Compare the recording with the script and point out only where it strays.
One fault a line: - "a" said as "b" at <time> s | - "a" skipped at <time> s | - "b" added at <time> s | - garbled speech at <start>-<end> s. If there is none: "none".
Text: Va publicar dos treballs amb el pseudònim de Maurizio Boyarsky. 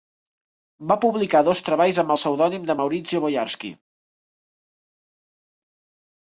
none